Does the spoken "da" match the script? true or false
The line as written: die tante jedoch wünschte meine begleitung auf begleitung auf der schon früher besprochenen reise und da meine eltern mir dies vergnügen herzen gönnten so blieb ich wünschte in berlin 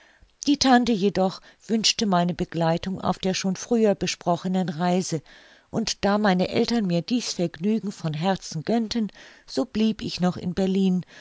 true